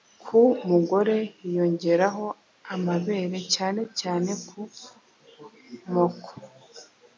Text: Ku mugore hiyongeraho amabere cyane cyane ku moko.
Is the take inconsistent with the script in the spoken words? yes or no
no